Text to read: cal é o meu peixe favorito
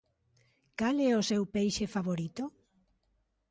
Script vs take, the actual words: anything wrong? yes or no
yes